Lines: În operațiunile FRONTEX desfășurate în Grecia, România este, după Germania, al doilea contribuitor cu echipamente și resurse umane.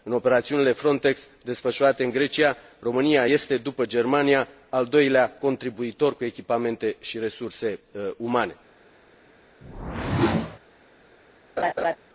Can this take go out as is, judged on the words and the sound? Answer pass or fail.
fail